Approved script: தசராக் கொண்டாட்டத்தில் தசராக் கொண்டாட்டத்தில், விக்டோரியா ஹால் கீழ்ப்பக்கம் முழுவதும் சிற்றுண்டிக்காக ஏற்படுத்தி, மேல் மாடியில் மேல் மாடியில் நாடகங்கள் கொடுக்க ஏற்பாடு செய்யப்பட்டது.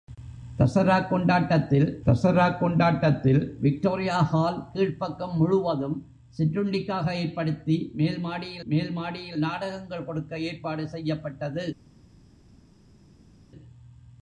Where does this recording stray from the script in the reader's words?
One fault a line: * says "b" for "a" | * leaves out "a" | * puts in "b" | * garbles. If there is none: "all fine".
all fine